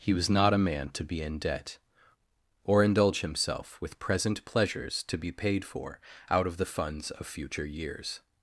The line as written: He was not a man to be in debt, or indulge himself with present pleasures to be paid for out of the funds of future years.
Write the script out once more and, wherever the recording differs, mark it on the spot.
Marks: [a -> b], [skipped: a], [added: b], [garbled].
He was not a man to be in debt, or indulge himself with present pleasures to be paid for out of the funds of future years.